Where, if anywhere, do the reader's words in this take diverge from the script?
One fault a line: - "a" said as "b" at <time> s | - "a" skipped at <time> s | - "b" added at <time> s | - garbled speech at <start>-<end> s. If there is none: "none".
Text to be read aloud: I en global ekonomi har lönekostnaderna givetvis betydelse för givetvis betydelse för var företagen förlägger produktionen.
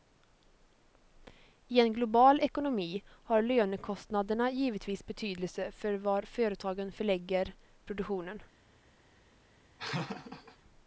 - "givetvis betydelse för" skipped at 5.9 s